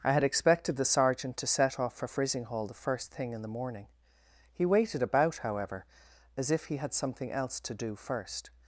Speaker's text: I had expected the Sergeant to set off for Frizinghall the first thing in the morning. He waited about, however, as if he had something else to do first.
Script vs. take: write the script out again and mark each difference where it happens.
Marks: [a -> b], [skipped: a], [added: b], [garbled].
I had expected the Sergeant to set off for Frizinghall the first thing in the morning. He waited about, however, as if he had something else to do first.